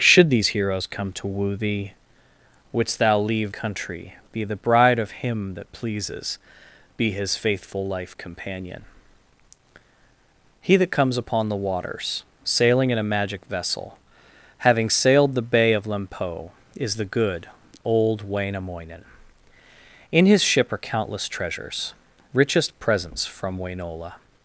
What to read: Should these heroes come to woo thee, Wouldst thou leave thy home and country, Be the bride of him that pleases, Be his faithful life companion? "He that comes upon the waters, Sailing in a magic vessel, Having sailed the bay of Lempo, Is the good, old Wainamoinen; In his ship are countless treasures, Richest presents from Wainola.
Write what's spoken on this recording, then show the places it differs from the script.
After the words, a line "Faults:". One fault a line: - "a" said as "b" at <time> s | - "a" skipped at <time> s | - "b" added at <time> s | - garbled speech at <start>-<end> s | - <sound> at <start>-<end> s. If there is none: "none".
Should these heroes come to woo thee, Wouldst thou leave country, Be the bride of him that pleases, Be his faithful life companion? "He that comes upon the waters, Sailing in a magic vessel, Having sailed the bay of Lempo, Is the good, old Wainamoinen; In his ship are countless treasures, Richest presents from Wainola.
Faults:
- "thy home and" skipped at 3.5 s